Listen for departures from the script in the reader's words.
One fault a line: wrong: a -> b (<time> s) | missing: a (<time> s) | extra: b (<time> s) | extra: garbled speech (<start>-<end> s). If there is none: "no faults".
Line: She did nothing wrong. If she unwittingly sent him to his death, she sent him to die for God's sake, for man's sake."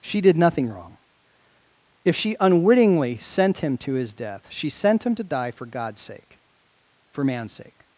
no faults